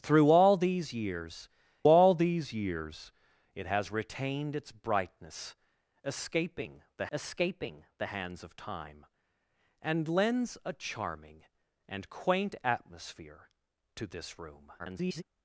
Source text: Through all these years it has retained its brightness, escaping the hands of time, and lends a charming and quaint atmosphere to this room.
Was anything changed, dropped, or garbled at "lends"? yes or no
no